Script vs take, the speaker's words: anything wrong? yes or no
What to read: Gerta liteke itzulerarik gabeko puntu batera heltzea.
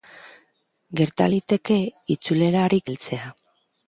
yes